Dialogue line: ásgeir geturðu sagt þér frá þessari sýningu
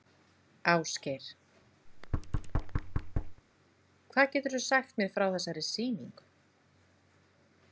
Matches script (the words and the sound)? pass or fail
fail